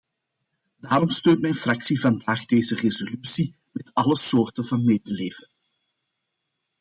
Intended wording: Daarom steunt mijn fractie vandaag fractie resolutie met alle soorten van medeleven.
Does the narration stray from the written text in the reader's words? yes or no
yes